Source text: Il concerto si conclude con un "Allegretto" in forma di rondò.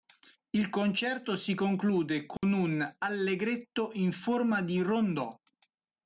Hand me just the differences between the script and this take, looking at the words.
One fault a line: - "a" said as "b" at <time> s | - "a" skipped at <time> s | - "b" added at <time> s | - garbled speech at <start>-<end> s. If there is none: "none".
none